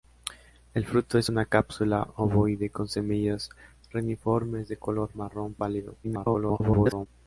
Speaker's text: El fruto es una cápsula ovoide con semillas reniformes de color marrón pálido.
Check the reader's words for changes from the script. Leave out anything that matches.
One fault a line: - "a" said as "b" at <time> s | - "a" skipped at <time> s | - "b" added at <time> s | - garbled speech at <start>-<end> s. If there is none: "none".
- garbled speech at 6.0-7.1 s